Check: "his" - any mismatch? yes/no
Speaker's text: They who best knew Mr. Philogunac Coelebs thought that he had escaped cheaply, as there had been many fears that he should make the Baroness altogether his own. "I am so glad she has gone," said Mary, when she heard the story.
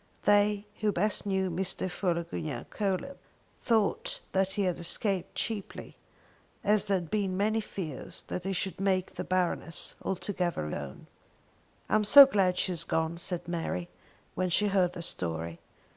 yes